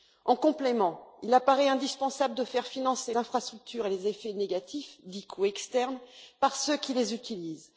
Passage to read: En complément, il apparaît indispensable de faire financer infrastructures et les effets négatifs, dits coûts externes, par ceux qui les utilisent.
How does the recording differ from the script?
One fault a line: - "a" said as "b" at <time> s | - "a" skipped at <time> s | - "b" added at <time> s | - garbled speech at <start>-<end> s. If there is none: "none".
none